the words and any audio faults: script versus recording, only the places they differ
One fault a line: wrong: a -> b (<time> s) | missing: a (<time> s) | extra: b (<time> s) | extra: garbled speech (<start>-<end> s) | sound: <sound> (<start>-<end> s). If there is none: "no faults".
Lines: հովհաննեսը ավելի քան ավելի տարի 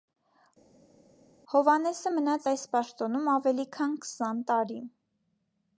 extra: մնաց այս պաշտոնում (2.1 s)
wrong: ավելի -> քսան (4.1 s)